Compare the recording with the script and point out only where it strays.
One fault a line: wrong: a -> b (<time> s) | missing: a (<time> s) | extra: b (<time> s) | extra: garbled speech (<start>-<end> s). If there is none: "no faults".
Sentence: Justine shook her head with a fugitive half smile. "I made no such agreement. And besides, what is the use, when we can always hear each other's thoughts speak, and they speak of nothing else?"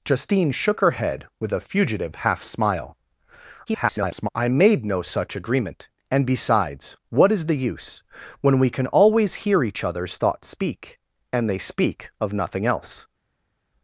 extra: garbled speech (3.7-4.3 s)